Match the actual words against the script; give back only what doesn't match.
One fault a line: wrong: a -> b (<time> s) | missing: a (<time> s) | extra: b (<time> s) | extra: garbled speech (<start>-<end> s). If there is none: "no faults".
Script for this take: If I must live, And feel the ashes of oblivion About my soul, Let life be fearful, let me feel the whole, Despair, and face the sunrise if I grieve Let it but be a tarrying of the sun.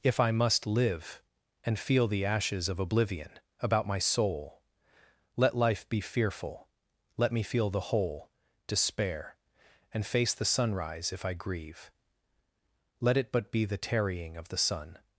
wrong: a -> the (13.7 s)